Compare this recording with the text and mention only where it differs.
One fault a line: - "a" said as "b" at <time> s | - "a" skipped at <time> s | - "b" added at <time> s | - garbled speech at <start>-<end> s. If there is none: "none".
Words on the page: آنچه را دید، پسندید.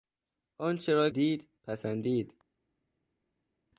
none